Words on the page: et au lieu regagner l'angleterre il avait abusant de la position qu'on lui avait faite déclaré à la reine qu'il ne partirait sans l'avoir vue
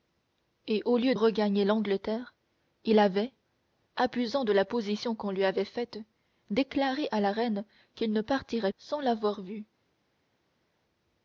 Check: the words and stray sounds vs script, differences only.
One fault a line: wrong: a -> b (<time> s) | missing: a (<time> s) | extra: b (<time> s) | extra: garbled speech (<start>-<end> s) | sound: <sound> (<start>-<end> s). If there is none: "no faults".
no faults